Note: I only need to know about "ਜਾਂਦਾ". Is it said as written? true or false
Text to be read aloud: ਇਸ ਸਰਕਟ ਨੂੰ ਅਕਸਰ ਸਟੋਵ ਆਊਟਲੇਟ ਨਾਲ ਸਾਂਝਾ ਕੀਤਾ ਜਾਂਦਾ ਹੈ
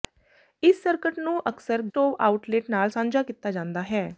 true